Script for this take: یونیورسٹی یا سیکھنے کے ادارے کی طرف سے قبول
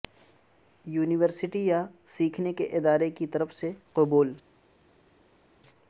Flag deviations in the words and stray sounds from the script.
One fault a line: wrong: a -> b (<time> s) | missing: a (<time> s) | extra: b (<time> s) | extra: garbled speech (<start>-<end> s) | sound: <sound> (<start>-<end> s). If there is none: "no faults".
no faults